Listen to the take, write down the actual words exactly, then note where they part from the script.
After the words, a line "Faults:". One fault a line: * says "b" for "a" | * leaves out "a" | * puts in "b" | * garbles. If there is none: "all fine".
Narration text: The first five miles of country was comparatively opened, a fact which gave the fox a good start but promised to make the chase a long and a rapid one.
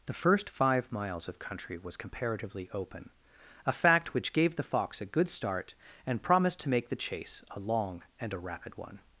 The first five miles of country was comparatively open, a fact which gave the fox a good start and promised to make the chase a long and a rapid one.
Faults:
* says "open" for "opened"
* says "and" for "but"